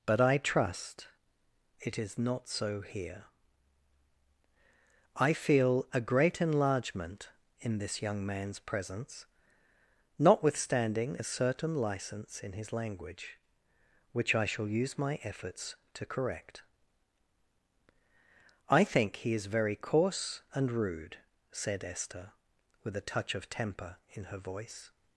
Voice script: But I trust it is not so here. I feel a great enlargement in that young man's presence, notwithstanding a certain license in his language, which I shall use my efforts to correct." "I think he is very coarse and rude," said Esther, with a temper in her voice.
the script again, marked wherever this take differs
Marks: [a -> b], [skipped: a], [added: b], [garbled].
But I trust it is not so here. I feel a great enlargement in [that -> this] young man's presence, notwithstanding a certain license in his language, which I shall use my efforts to correct." "I think he is very coarse and rude," said Esther, with a [added: touch of] temper in her voice.